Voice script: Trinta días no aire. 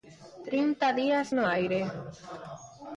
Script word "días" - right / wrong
right